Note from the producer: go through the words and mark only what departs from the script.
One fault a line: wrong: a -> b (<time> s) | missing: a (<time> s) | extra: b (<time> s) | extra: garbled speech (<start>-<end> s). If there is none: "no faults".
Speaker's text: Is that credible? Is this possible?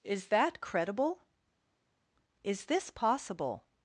no faults